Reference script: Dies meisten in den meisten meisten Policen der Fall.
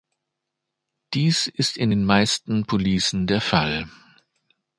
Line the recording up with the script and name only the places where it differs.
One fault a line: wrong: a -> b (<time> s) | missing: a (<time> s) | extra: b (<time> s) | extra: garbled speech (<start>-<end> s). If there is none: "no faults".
wrong: meisten -> ist (1.4 s)
missing: meisten (2.6 s)